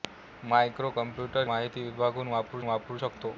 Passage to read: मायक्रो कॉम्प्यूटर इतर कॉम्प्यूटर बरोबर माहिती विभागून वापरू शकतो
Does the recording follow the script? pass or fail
fail